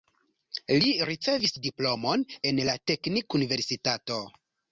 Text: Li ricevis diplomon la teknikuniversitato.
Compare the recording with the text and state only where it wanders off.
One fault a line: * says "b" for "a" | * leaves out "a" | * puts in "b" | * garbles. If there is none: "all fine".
* puts in "en"